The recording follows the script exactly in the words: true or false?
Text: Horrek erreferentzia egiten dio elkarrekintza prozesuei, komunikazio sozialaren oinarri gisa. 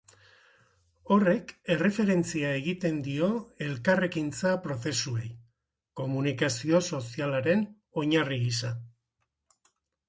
true